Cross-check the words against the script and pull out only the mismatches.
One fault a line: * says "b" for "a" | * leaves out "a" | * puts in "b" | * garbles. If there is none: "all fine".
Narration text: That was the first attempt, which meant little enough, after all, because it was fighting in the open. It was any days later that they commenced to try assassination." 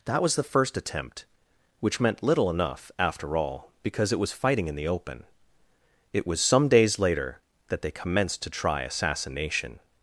* says "some" for "any"